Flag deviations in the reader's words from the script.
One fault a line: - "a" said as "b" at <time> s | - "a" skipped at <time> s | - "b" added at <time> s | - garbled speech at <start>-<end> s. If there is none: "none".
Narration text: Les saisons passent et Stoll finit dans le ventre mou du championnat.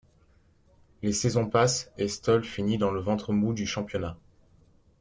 none